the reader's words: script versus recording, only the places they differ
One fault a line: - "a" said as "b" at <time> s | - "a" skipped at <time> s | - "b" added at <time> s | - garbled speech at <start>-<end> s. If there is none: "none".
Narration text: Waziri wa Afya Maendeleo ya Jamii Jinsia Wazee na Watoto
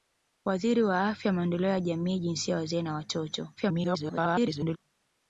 - garbled speech at 3.6-4.8 s